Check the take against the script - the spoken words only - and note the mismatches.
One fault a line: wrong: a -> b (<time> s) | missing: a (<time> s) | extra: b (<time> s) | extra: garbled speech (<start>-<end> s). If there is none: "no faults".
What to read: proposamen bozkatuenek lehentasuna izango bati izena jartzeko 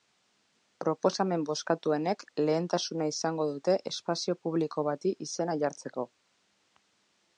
extra: dute espazio publiko (3.5 s)